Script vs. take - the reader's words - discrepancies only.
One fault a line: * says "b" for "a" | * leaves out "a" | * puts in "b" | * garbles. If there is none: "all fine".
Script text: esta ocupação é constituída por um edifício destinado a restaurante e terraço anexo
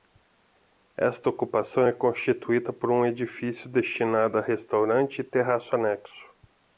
all fine